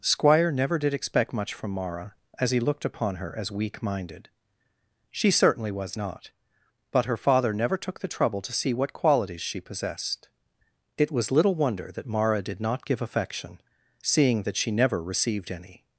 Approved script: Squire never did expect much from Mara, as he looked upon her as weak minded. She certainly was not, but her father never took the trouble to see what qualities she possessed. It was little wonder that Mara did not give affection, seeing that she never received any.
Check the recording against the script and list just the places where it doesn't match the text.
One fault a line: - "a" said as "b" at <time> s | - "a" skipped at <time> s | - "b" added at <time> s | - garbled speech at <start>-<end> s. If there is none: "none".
none